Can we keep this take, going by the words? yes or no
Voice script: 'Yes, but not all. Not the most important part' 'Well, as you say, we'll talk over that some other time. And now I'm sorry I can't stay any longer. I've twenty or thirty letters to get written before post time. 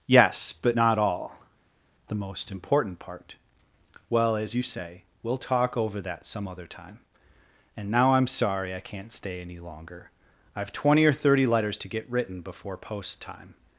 no